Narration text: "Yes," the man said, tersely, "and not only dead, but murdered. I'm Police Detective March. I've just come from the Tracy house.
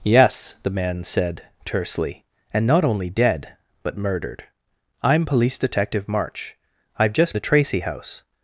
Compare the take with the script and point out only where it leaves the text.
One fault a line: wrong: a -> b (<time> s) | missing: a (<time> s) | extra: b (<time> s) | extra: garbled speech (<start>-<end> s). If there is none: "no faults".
missing: come from (7.3 s)